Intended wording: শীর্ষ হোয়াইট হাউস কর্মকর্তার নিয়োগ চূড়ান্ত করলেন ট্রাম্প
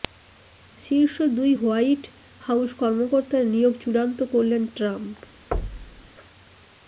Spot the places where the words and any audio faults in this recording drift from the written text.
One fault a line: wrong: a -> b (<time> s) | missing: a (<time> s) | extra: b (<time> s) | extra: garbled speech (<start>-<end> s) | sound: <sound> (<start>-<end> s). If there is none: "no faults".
extra: দুই (1.4 s)
sound: thud (5.5-6.1 s)